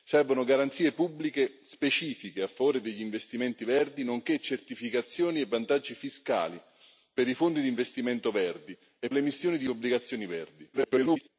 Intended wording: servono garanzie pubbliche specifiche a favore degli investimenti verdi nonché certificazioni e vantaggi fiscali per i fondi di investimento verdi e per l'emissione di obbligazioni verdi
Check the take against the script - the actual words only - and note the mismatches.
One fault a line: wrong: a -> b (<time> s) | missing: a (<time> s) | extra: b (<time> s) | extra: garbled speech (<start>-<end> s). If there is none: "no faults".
missing: per (9.1 s)
extra: garbled speech (10.7-11.3 s)